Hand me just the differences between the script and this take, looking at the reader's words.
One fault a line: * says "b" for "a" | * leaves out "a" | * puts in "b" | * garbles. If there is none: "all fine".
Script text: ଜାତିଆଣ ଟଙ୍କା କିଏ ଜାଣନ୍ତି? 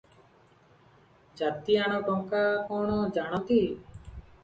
* says "କଣ" for "କିଏ"